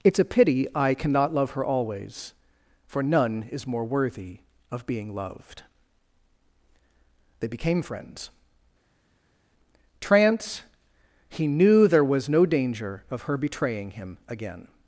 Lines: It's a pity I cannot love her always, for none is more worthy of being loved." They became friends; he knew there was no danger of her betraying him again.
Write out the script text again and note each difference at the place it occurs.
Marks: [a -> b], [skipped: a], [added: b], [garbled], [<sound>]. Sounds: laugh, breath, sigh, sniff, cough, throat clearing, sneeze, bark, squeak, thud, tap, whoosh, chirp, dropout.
It's a pity I cannot love her always, for none is more worthy of being loved." They became friends; [added: trance] he knew there was no danger of her betraying him again.